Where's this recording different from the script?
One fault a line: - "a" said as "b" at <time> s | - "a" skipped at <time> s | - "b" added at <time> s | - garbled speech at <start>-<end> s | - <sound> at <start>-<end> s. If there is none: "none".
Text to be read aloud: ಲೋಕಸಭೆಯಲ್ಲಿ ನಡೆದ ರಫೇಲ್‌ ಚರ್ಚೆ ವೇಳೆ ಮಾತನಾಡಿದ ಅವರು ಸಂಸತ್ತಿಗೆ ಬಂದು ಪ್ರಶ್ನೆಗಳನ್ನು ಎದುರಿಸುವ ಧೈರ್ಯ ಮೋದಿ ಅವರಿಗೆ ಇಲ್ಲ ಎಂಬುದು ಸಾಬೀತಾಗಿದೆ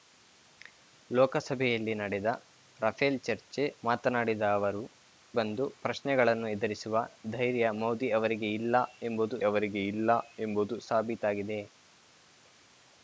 - "ವೇಳೆ" skipped at 3.6 s
- "ಸಂಸತ್ತಿಗೆ" skipped at 4.8 s
- "ಅವರಿಗೆ ಇಲ್ಲ ಎಂಬುದು" added at 9.4 s